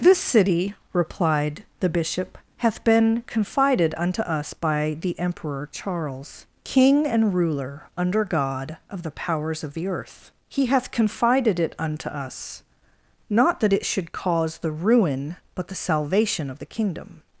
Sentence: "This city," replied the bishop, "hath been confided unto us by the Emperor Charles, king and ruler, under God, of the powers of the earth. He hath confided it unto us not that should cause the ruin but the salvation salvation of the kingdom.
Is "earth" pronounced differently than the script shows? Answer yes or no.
no